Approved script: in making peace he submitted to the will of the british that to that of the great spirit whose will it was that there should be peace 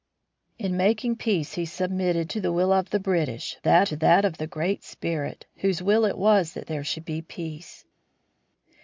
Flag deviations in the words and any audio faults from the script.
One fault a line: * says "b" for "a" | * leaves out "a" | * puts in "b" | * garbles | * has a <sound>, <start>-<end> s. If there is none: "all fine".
all fine